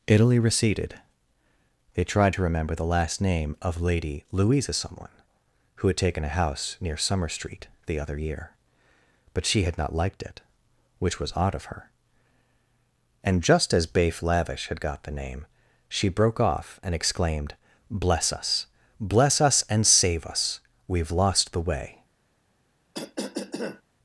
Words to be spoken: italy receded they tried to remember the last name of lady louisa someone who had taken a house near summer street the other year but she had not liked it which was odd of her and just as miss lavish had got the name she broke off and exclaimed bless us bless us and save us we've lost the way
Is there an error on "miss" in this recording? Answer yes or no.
yes